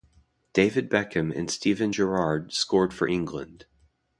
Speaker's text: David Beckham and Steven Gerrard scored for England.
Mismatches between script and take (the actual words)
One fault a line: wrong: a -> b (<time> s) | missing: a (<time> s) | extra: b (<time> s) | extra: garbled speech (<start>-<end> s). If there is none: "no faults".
no faults